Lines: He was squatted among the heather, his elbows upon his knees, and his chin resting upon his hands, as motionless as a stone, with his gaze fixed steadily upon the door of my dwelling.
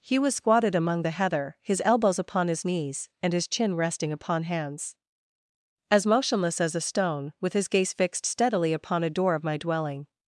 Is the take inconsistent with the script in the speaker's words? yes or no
yes